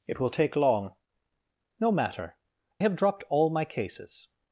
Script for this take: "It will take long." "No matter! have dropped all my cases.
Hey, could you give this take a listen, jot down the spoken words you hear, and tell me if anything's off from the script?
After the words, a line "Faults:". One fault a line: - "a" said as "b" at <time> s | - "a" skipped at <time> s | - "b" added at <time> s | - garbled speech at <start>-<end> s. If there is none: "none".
"It will take long." "No matter! have dropped all my cases.
Faults:
none